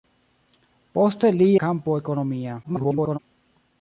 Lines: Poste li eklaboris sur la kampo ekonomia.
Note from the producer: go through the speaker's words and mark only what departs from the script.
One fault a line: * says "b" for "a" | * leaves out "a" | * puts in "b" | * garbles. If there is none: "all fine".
* leaves out "eklaboris sur la"
* garbles